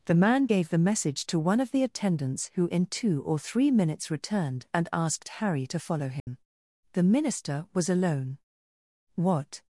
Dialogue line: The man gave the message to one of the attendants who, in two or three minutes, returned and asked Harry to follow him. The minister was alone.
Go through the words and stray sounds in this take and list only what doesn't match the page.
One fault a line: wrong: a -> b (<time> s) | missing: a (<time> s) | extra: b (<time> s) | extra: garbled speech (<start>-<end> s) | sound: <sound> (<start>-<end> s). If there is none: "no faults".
sound: dropout (6.2-6.3 s)
extra: What (9.1 s)